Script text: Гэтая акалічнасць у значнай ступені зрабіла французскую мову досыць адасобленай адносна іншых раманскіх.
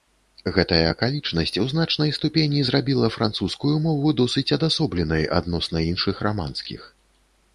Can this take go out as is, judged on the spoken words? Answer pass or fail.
pass